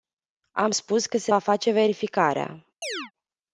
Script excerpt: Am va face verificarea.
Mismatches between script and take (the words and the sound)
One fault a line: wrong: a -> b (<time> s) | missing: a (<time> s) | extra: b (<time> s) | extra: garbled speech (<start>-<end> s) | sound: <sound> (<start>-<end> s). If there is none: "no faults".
extra: spus că se (0.7 s)
sound: chirp (2.8-3.1 s)